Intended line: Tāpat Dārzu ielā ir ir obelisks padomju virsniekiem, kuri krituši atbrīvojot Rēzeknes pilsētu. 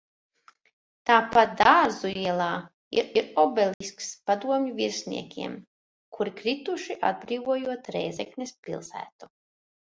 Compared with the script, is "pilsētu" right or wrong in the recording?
right